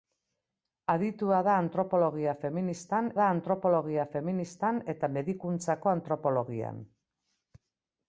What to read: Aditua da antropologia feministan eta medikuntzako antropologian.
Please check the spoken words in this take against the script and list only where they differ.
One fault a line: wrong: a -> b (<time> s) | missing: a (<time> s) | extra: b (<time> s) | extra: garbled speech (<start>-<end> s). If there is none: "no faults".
extra: da antropologia feministan (3.2 s)